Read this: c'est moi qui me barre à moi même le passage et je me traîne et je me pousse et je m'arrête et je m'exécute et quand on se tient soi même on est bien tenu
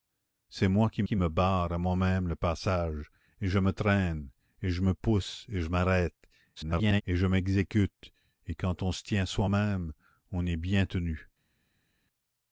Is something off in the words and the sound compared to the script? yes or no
yes